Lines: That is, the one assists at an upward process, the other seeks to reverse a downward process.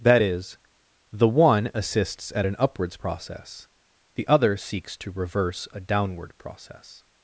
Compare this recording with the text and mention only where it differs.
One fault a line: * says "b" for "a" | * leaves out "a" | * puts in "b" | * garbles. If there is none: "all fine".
* says "upwards" for "upward"